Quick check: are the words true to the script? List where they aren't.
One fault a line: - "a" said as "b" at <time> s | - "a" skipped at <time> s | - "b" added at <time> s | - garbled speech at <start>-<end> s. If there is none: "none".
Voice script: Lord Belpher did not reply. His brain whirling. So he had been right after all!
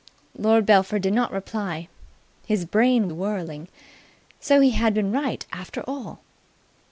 none